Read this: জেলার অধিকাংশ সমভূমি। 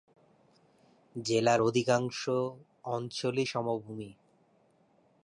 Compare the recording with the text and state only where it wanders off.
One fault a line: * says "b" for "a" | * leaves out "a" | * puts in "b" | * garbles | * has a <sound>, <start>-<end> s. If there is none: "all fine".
* puts in "অঞ্চলই"